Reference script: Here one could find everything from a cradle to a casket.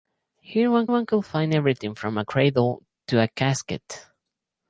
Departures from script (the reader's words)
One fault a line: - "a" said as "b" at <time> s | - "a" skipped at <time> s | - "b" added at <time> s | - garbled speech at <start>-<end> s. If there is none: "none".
- "one" added at 0.9 s